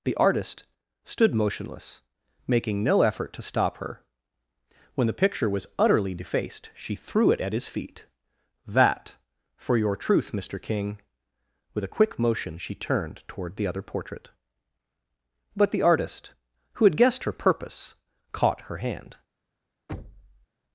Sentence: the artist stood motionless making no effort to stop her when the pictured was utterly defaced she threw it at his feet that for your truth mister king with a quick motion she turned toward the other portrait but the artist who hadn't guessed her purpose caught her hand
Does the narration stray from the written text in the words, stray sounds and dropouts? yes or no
yes